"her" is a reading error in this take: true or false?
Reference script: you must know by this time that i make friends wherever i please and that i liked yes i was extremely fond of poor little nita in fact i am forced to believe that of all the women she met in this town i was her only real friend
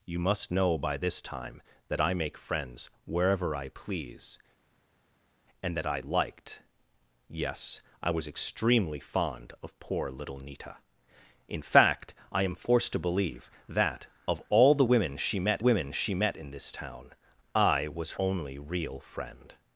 true